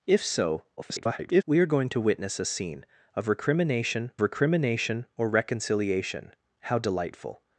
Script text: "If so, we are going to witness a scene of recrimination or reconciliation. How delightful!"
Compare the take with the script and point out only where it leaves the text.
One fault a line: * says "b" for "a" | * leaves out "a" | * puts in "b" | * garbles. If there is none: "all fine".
* garbles
* puts in "recrimination"